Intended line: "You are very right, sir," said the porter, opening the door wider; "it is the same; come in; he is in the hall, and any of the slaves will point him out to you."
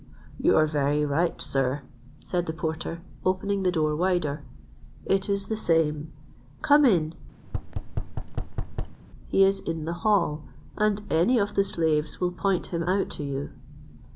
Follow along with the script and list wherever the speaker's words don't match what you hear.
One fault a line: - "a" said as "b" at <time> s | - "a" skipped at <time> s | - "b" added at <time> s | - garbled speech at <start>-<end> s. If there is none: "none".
none